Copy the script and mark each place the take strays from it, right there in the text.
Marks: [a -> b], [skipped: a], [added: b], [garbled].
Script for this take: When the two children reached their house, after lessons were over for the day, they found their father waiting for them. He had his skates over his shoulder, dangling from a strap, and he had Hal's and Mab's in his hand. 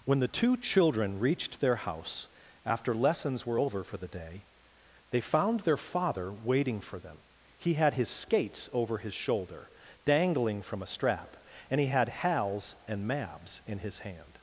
When the two children reached their house, after lessons were over for the day, they found their father waiting for them. He had his skates over his shoulder, dangling from a strap, and he had Hal's and Mab's in his hand.